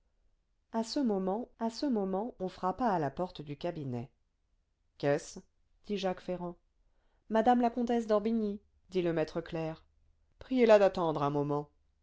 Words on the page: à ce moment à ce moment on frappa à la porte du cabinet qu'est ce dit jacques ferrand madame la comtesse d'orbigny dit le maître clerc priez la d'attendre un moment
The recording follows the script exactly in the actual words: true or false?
true